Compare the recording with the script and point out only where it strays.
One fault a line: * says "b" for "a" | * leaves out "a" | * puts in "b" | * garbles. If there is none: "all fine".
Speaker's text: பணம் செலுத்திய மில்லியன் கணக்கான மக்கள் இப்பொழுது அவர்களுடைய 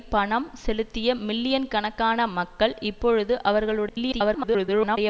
* garbles